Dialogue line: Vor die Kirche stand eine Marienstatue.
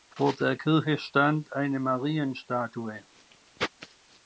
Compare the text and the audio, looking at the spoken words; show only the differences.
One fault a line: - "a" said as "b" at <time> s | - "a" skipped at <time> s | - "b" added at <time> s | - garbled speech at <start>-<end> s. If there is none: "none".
- "die" said as "der" at 0.3 s